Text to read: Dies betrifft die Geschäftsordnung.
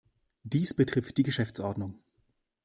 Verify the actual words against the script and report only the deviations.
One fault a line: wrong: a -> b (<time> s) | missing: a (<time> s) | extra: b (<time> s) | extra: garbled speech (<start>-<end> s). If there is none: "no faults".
no faults